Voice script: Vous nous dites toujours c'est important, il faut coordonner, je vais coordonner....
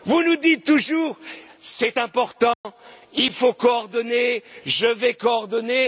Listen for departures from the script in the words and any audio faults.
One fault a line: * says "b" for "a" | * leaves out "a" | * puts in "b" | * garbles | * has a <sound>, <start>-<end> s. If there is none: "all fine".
* has a dropout, 2.5-2.6 s